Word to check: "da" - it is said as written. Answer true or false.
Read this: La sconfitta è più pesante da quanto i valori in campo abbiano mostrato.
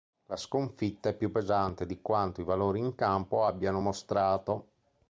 false